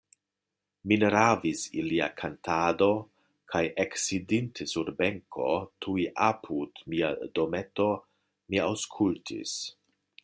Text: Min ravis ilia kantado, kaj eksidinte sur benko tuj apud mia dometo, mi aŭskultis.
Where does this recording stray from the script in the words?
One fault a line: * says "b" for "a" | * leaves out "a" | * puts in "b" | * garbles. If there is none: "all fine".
all fine